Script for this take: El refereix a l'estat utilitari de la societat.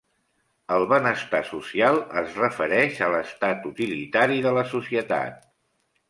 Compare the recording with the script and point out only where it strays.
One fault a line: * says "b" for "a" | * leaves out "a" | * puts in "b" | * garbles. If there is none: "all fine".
* puts in "benestar social es"